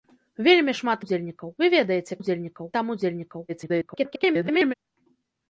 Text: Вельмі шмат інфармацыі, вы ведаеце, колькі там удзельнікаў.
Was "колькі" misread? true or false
true